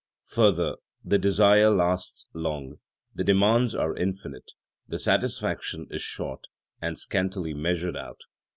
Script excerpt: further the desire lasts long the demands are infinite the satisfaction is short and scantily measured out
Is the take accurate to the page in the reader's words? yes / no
yes